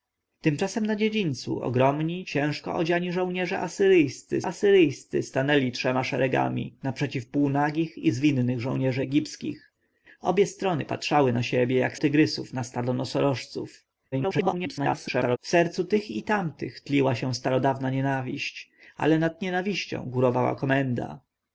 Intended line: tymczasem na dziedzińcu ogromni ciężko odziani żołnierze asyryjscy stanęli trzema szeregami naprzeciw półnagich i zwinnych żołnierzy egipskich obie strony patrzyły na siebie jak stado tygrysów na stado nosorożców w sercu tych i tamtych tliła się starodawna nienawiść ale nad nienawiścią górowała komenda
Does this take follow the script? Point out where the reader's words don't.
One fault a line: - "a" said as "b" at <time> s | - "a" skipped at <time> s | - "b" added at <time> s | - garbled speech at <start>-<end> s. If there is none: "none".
- "asyryjscy" added at 4.4 s
- "stado" skipped at 12.0 s
- garbled speech at 14.1-15.4 s